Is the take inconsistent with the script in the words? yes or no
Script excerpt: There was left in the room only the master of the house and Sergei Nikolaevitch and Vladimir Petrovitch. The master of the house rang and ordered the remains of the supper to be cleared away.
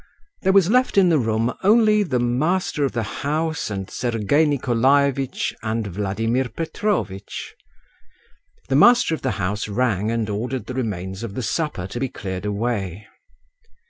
no